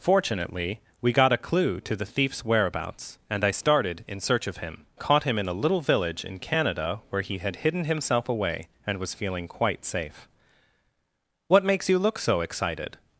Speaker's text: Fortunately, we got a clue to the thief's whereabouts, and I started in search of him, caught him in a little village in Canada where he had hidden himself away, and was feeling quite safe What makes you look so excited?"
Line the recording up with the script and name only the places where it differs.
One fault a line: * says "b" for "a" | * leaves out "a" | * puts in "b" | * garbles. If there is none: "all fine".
all fine